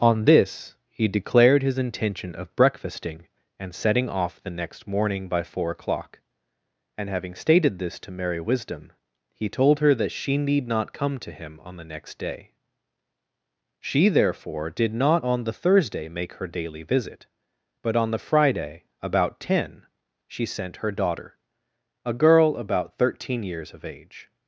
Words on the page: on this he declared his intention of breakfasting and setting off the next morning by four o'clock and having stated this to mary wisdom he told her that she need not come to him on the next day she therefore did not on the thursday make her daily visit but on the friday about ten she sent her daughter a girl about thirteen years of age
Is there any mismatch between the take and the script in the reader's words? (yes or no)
no